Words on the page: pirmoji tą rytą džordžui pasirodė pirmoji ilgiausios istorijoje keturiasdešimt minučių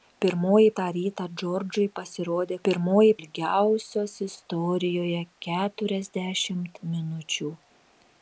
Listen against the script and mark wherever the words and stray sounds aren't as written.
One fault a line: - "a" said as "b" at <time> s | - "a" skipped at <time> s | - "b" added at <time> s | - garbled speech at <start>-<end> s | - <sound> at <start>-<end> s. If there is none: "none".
none